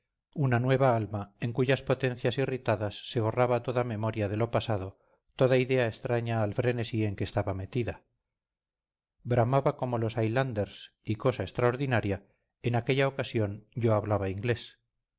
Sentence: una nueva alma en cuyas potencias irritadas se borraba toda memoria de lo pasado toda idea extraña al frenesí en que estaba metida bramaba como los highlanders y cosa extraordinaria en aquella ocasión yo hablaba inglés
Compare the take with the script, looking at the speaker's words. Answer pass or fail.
pass